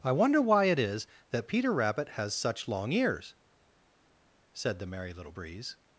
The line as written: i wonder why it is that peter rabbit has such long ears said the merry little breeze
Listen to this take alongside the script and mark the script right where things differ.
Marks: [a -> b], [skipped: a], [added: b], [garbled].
i wonder why it is that peter rabbit has such long ears said the merry little breeze